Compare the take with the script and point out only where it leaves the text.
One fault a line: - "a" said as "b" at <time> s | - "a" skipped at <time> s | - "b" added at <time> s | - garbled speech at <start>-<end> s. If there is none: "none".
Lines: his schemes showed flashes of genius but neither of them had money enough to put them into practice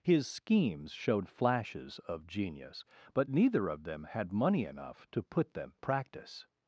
- "into" skipped at 5.7 s